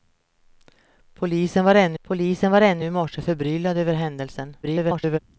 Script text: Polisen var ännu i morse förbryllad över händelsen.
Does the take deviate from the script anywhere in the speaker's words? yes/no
yes